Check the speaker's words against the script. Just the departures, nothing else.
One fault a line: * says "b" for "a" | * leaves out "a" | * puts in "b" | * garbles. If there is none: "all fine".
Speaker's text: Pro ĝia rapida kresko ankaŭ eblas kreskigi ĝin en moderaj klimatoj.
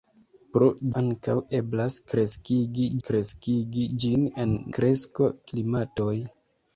* leaves out "ĝia rapida kresko"
* puts in "kreskigi"
* says "kresko" for "moderaj"